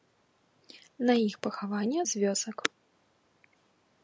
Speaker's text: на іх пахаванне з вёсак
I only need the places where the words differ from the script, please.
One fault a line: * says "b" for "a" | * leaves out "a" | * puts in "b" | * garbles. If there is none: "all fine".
all fine